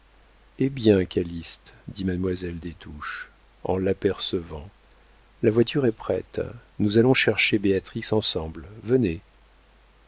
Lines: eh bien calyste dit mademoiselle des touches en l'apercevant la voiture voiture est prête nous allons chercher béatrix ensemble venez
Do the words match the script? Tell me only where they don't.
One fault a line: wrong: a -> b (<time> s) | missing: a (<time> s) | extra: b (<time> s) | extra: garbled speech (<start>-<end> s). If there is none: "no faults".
missing: voiture (5.8 s)